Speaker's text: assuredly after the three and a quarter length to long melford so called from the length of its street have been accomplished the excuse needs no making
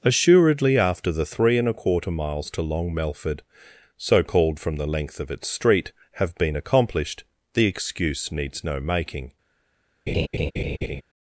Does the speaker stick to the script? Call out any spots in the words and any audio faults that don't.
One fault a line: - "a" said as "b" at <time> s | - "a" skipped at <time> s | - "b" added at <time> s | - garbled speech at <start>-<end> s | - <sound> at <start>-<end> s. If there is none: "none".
- "length" said as "miles" at 2.1 s
- laugh at 10.1-11.0 s